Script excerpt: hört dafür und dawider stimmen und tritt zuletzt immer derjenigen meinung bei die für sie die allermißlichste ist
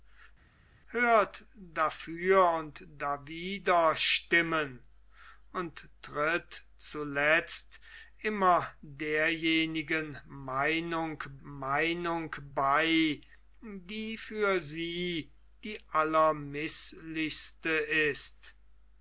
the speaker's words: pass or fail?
fail